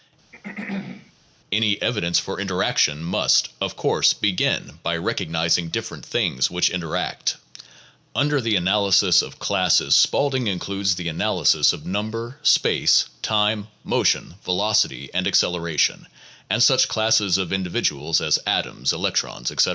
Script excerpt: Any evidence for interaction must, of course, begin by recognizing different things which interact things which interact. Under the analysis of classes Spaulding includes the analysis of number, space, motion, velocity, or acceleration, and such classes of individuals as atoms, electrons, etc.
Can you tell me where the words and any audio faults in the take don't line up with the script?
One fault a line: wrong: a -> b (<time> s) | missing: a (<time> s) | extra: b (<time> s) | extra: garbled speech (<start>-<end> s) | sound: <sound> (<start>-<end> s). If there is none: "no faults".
sound: throat clearing (0.3-1.1 s)
missing: things which interact (7.4 s)
extra: time (13.2 s)
wrong: or -> and (15.1 s)